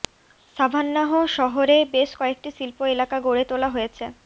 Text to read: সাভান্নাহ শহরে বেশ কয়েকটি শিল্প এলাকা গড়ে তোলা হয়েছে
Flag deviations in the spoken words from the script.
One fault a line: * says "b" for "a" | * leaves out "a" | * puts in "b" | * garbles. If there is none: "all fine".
all fine